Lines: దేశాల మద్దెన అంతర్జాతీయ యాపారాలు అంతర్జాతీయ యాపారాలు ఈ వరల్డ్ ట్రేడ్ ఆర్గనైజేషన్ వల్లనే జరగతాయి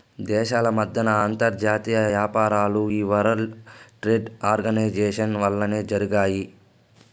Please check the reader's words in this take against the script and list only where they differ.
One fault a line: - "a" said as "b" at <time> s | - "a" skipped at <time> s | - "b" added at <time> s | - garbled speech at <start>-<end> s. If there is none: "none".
- "అంతర్జాతీయ యాపారాలు" skipped at 2.8 s